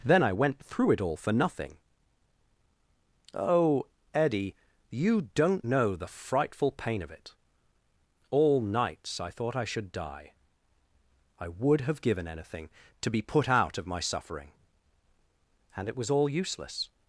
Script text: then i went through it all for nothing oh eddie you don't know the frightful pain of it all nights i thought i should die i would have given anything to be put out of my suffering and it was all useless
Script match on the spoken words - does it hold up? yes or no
yes